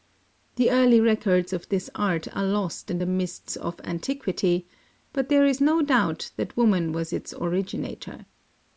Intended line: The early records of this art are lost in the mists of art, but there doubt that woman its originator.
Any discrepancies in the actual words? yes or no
yes